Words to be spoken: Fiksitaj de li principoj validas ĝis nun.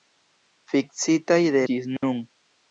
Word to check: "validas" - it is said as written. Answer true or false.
false